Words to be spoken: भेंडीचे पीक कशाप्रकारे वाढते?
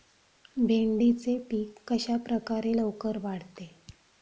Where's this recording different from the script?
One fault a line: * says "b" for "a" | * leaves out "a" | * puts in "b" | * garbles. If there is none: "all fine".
* puts in "लवकर"